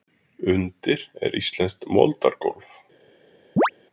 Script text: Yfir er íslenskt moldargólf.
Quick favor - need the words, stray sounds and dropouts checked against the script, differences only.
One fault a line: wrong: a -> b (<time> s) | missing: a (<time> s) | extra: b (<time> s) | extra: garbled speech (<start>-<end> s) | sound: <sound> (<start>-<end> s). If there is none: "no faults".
wrong: Yfir -> Undir (0.5 s)
sound: chirp (3.6-3.7 s)